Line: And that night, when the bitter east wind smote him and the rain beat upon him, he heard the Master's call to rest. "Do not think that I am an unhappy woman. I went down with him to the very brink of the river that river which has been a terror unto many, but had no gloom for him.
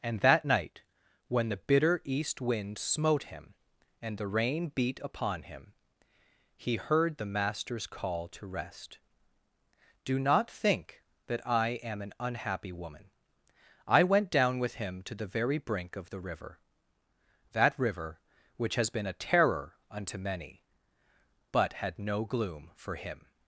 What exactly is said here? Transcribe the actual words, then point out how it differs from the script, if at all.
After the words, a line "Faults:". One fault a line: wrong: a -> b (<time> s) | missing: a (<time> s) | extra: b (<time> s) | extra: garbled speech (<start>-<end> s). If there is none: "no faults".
And that night, when the bitter east wind smote him and the rain beat upon him, he heard the Master's call to rest. "Do not think that I am an unhappy woman. I went down with him to the very brink of the river that river which has been a terror unto many, but had no gloom for him.
Faults:
no faults